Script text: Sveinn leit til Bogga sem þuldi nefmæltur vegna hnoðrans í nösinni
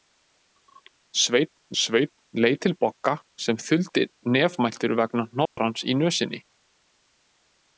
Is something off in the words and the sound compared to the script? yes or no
yes